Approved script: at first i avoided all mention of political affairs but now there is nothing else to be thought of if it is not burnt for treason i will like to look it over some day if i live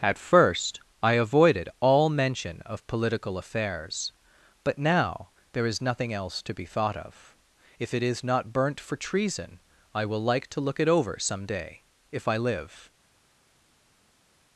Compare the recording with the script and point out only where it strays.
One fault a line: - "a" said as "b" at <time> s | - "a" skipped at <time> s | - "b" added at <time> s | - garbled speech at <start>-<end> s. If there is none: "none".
none